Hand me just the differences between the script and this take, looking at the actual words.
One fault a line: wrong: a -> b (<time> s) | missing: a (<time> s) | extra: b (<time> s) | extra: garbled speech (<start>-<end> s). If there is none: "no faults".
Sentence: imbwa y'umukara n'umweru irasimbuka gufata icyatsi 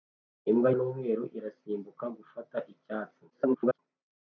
missing: y'umukara (0.7 s)
extra: garbled speech (3.3-3.8 s)